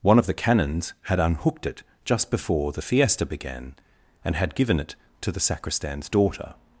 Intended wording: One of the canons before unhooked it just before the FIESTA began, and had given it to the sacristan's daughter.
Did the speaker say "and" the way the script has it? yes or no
yes